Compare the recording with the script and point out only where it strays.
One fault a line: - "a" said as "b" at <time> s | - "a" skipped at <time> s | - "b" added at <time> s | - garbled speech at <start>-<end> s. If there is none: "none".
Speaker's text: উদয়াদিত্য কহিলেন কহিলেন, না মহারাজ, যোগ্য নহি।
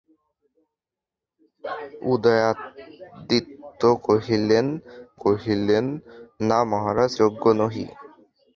none